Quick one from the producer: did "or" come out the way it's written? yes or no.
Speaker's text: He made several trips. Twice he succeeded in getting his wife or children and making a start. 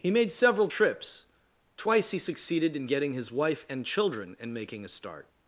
no